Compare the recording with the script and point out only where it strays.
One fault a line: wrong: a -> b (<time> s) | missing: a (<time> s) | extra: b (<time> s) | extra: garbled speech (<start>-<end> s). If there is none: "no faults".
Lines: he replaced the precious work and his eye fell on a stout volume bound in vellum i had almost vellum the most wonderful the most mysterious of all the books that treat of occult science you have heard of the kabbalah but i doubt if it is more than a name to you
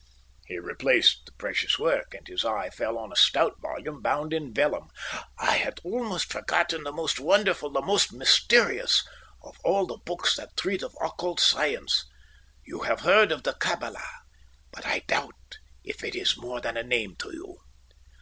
wrong: vellum -> forgotten (6.3 s)